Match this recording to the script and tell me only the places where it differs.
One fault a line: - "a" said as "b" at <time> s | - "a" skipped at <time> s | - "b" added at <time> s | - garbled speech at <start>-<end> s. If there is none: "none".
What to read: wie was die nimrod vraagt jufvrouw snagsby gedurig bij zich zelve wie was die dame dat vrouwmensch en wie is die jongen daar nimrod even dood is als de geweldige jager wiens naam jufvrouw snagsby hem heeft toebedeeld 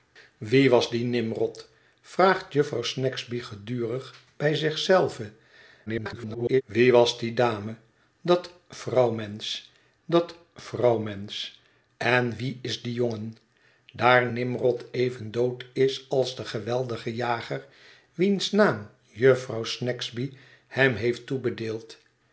- garbled speech at 5.9-6.6 s
- "dat vrouwmensch" added at 10.0 s